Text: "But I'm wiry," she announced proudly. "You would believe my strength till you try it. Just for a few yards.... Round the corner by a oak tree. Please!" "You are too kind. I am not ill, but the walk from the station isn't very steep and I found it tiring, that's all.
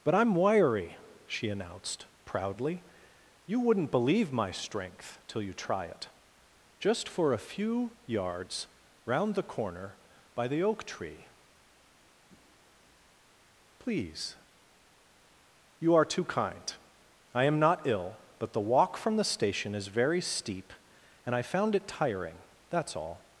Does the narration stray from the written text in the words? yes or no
yes